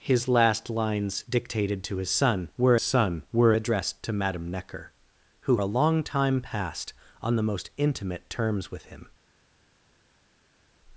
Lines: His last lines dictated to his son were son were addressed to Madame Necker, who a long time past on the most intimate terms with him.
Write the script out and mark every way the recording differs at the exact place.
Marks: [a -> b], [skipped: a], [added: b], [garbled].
His last lines dictated to his son were son were addressed to Madame Necker, who a long time past on the most intimate terms with him.